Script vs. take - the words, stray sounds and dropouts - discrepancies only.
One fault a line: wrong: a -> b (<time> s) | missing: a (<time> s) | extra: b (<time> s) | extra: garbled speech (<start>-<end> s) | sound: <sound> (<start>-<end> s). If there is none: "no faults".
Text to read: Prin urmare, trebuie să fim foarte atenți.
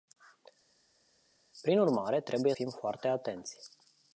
missing: să (2.5 s)